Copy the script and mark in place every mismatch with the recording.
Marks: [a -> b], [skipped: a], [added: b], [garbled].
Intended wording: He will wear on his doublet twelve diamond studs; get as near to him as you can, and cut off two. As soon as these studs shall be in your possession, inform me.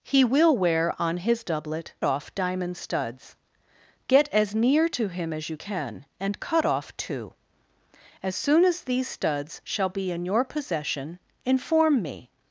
He will wear on his doublet [twelve -> off] diamond studs; get as near to him as you can, and cut off two. As soon as these studs shall be in your possession, inform me.